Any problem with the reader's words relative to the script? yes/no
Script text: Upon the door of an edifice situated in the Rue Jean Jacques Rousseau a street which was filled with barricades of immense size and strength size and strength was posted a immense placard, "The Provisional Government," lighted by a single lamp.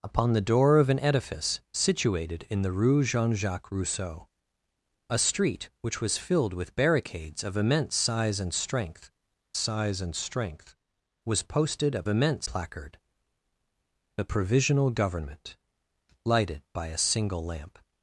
no